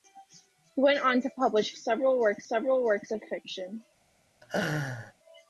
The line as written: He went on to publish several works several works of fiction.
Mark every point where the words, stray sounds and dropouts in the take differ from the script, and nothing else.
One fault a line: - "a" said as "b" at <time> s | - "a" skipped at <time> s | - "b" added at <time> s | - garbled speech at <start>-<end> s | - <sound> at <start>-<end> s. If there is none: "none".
- laugh at 4.4-5.1 s